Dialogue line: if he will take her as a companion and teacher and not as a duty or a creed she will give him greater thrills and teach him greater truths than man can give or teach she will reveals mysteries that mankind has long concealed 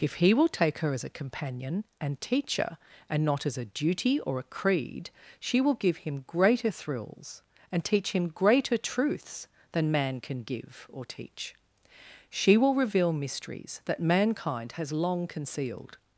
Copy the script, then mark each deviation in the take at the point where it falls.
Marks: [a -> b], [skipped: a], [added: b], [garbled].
if he will take her as a companion and teacher and not as a duty or a creed she will give him greater thrills and teach him greater truths than man can give or teach she will [reveals -> reveal] mysteries that mankind has long concealed